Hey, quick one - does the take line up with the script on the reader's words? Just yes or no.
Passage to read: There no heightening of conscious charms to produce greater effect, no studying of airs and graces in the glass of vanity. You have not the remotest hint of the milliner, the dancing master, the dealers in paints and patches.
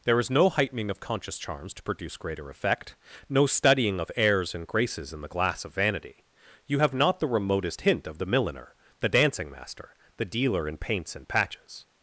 no